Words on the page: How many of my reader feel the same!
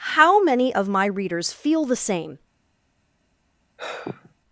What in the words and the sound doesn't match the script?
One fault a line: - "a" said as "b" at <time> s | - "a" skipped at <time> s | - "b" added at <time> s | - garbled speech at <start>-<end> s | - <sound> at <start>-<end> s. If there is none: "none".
- "reader" said as "readers" at 1.1 s
- sigh at 3.8-4.3 s